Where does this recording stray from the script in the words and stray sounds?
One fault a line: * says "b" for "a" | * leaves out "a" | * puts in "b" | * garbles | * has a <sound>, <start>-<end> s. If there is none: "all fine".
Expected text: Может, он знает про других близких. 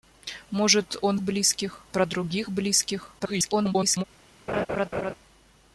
* says "близких" for "знает"
* garbles
* has a laugh, 4.5-5.1 s